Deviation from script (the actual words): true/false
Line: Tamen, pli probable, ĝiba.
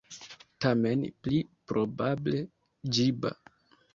false